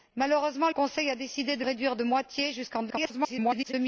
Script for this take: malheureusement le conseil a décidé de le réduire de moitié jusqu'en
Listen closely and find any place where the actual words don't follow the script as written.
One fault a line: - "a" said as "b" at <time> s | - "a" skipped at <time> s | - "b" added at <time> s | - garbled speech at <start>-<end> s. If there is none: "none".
- "le" skipped at 0.7 s
- "le" skipped at 1.6 s
- garbled speech at 2.9-3.7 s